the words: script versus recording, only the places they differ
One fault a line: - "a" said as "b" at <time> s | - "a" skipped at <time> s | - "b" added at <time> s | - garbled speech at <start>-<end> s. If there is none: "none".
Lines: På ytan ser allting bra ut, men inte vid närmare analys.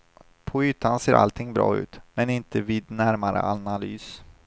none